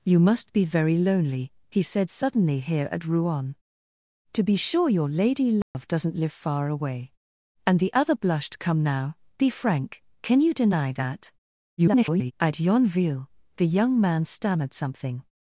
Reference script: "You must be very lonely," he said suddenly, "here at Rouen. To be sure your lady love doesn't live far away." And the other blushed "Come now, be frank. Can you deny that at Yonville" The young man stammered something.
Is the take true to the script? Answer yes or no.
no